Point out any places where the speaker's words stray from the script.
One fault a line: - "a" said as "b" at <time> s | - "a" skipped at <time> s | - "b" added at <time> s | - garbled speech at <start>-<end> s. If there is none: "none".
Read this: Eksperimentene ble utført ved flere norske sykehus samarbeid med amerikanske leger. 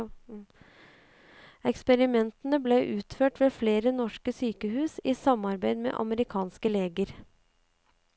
- "i" added at 5.0 s